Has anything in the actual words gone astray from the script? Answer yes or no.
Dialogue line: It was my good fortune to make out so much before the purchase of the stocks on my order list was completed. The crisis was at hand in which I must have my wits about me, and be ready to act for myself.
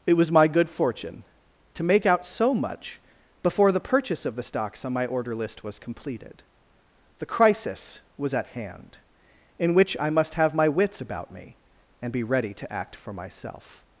no